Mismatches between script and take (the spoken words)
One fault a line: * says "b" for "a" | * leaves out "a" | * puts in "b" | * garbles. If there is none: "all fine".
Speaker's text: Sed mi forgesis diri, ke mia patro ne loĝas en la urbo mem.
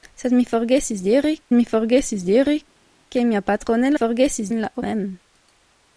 * puts in "mi forgesis diri"
* says "forgesis" for "loĝas"
* leaves out "urbo"